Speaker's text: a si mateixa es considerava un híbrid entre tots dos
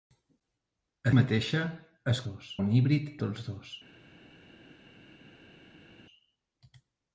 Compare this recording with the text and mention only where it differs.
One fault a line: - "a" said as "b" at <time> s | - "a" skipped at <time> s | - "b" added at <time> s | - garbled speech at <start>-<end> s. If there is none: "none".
- "si" skipped at 1.1 s
- "considerava" said as "dos" at 2.3 s
- "entre" skipped at 3.1 s